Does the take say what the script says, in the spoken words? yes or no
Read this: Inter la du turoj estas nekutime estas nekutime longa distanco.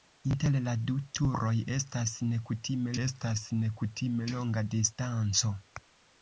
yes